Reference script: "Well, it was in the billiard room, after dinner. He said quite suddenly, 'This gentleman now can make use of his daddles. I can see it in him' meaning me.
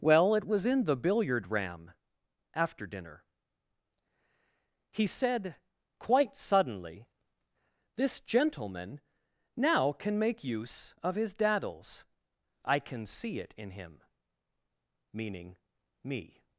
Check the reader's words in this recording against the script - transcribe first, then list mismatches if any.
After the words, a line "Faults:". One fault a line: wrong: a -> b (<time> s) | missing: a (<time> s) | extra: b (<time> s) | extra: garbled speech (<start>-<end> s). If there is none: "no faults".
"Well, it was in the billiard ram, after dinner. He said quite suddenly, 'This gentleman now can make use of his daddles. I can see it in him' meaning me.
Faults:
wrong: room -> ram (1.5 s)